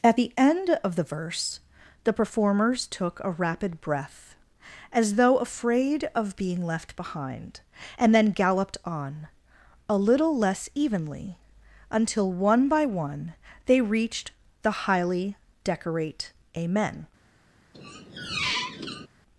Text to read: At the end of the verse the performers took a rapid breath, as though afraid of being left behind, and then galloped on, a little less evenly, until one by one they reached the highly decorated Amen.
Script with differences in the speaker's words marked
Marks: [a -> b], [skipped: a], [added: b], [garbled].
At the end of the verse the performers took a rapid breath, as though afraid of being left behind, and then galloped on, a little less evenly, until one by one they reached the highly [decorated -> decorate] Amen.